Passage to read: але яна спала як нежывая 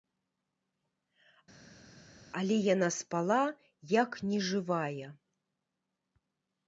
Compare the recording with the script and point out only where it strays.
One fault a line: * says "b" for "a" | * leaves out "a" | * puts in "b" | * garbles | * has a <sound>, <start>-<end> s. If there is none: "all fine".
all fine